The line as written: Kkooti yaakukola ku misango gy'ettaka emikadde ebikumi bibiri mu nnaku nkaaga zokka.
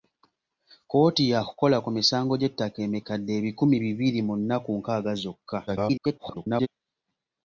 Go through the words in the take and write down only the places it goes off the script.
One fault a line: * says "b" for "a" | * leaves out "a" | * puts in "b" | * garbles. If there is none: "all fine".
* garbles